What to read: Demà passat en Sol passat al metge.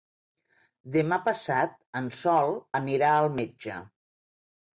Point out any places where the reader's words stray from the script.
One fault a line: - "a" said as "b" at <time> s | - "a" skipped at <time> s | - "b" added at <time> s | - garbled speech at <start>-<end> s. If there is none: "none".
- "passat" said as "anirà" at 2.8 s